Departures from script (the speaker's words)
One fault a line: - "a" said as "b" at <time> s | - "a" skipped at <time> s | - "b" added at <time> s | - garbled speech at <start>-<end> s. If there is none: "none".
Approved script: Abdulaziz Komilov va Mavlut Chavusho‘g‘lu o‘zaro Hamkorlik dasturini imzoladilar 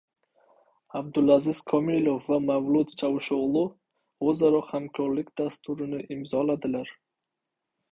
none